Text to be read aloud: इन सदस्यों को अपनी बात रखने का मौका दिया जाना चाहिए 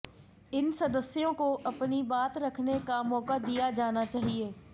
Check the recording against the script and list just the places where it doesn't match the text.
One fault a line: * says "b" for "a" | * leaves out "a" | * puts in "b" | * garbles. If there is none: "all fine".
all fine